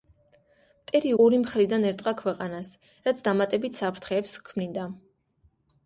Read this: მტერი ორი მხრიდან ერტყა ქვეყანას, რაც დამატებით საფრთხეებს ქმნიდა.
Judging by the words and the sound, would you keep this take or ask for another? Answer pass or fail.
pass